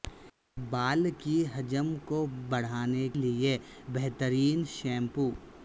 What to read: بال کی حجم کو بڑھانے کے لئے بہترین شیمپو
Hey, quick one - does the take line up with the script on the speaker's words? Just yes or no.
no